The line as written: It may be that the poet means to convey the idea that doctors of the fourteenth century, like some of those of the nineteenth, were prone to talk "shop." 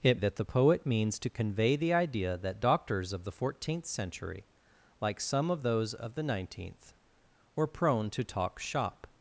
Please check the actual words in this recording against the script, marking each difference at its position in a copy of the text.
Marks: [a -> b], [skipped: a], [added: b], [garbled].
It [skipped: may be] that the poet means to convey the idea that doctors of the fourteenth century, like some of those of the nineteenth, were prone to talk "shop."